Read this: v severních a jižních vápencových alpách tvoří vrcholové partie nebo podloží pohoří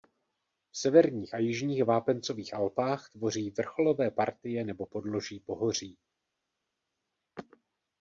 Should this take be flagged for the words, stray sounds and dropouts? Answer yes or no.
no